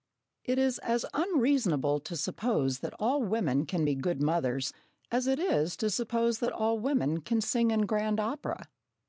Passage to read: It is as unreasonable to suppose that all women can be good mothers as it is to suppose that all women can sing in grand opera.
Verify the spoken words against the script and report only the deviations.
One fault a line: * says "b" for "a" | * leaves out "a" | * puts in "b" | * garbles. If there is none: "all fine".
all fine